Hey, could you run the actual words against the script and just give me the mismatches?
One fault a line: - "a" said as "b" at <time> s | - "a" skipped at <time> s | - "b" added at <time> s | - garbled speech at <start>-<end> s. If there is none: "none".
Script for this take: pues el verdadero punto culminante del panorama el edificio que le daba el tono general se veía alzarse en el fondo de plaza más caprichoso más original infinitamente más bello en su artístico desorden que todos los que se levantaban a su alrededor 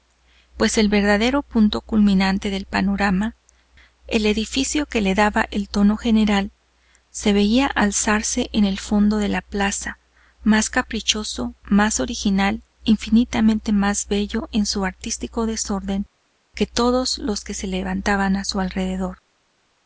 - "la" added at 9.3 s